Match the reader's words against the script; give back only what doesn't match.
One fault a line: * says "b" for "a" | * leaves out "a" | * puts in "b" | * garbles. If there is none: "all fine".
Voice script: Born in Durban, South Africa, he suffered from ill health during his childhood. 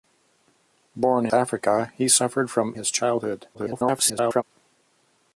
* leaves out "in Durban South"
* leaves out "ill health during"
* garbles